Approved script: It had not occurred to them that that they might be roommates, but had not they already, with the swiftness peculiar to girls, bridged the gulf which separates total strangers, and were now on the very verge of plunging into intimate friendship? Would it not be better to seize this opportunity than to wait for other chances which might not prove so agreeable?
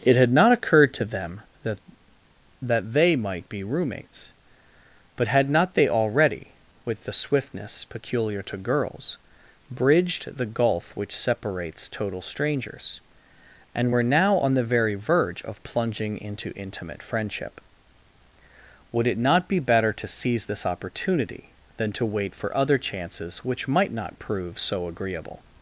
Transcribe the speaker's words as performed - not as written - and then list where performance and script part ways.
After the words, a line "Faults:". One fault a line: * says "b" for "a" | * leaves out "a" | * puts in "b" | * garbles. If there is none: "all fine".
It had not occurred to them that that they might be roommates, but had not they already, with the swiftness peculiar to girls, bridged the gulf which separates total strangers, and were now on the very verge of plunging into intimate friendship? Would it not be better to seize this opportunity than to wait for other chances which might not prove so agreeable?
Faults:
all fine